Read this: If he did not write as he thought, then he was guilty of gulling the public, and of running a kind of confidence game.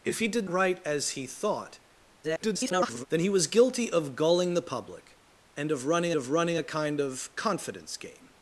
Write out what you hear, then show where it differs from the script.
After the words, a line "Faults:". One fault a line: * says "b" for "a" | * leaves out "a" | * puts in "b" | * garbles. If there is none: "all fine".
If he did write as he thought, [garbled] then he was guilty of gulling the public, and of running of running a kind of confidence game.
Faults:
* leaves out "not"
* garbles
* puts in "of running"